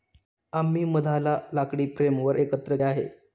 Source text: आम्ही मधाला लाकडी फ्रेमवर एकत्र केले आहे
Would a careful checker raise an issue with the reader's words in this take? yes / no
yes